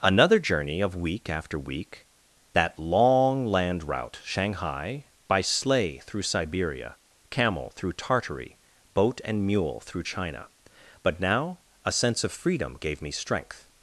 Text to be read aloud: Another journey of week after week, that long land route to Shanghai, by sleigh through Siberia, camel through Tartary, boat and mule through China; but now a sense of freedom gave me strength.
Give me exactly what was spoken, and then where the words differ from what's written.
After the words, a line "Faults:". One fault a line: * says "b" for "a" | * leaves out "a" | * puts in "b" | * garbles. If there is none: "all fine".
Another journey of week after week, that long land route Shanghai, by sleigh through Siberia, camel through Tartary, boat and mule through China; but now a sense of freedom gave me strength.
Faults:
* leaves out "to"